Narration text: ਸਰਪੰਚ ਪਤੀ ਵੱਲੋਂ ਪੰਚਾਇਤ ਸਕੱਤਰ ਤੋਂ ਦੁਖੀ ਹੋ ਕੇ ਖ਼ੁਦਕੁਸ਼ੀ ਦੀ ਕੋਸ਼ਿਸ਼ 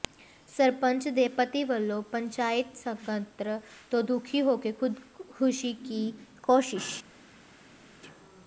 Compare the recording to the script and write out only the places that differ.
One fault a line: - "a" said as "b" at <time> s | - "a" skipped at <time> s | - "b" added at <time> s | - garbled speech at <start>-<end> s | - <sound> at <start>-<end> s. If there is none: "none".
- "ਦੇ" added at 1.1 s